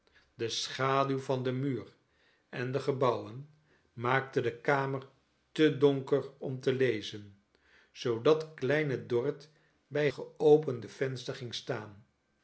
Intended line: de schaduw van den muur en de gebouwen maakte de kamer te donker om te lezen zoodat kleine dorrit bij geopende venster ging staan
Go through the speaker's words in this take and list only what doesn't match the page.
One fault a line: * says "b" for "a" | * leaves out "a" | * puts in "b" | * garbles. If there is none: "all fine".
all fine